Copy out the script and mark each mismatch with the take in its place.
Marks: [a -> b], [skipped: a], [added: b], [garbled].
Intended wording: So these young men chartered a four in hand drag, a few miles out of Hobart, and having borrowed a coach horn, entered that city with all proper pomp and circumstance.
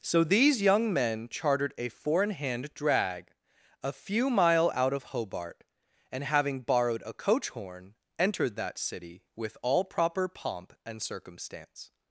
So these young men chartered a four in hand drag, a few [miles -> mile] out of Hobart, and having borrowed a coach horn, entered that city with all proper pomp and circumstance.